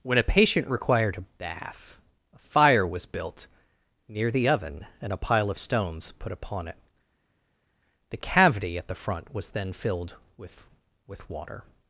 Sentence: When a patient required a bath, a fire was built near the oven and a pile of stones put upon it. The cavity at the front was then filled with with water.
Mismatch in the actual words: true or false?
false